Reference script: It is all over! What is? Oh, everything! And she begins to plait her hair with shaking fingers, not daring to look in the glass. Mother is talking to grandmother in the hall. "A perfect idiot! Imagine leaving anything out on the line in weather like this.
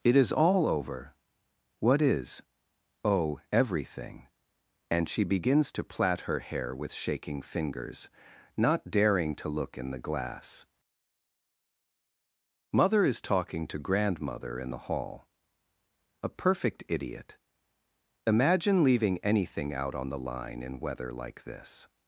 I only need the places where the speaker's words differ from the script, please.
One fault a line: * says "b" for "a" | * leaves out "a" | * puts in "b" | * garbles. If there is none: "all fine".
all fine